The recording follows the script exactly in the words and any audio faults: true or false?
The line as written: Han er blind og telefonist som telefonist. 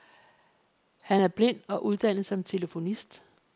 false